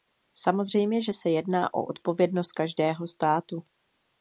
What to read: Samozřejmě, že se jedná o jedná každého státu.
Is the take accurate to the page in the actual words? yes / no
no